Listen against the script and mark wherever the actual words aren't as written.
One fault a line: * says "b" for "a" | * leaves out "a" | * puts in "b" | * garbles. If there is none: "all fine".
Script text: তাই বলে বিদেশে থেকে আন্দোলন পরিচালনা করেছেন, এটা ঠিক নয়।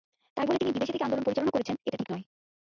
* puts in "তিনি"